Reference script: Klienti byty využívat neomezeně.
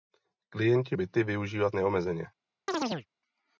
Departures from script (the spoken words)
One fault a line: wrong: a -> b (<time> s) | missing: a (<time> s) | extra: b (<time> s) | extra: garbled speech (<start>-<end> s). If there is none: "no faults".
no faults